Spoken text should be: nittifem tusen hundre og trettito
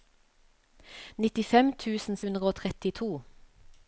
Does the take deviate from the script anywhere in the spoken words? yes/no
no